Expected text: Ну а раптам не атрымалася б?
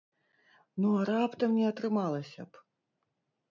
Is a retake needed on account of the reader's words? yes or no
no